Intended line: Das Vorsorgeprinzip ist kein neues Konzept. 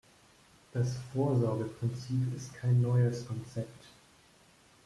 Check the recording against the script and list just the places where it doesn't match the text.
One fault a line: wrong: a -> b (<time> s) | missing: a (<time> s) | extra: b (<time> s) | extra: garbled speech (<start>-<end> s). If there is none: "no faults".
no faults